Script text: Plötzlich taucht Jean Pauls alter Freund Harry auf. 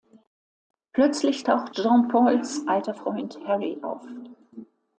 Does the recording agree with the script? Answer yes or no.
yes